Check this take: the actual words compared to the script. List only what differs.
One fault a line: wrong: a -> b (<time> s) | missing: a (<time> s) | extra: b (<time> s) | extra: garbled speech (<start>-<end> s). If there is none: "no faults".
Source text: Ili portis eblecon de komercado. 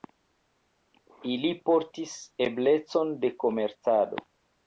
no faults